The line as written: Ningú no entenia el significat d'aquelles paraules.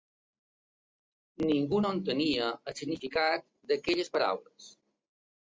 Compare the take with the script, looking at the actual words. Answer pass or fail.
pass